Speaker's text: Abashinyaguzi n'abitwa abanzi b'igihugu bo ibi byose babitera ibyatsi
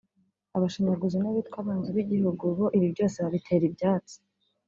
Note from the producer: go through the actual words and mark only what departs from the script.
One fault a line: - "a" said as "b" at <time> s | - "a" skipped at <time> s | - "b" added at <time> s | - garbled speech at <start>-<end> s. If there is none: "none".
none